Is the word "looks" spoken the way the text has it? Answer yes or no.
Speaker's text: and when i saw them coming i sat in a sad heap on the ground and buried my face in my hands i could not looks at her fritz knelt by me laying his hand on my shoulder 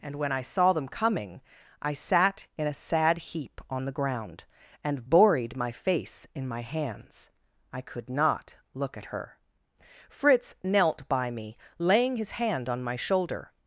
no